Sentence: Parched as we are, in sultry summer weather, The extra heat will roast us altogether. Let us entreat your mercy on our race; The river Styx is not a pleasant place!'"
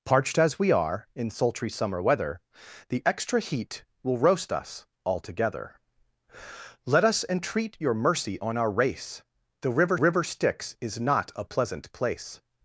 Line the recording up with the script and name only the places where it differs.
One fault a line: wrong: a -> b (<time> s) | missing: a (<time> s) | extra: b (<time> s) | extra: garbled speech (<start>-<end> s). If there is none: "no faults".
extra: river (10.0 s)